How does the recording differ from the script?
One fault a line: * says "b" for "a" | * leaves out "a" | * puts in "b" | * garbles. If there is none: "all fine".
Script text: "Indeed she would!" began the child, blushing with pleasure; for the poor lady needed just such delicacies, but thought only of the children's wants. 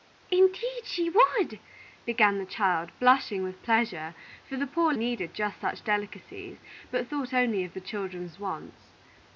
* leaves out "lady"